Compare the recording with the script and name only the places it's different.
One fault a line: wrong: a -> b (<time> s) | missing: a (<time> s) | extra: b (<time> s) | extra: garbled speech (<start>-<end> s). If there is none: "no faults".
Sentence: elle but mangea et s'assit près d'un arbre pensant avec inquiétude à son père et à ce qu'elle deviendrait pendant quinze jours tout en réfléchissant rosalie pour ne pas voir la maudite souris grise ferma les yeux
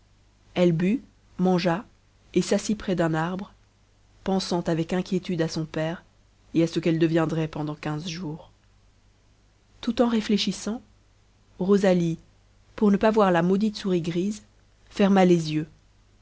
no faults